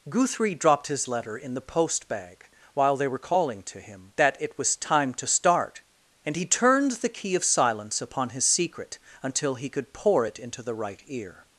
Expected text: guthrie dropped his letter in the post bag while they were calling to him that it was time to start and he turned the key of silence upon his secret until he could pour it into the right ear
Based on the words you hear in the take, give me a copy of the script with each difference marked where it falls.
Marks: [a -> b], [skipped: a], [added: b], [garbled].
guthrie dropped his letter in the post bag while they were calling to him that it was time to start and he turned the key of silence upon his secret until he could pour it into the right ear